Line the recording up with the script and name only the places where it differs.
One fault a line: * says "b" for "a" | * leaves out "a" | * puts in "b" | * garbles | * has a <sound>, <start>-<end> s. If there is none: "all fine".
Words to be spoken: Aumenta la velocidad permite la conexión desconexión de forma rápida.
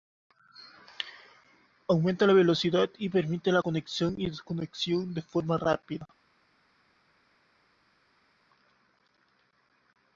* puts in "y"
* puts in "y"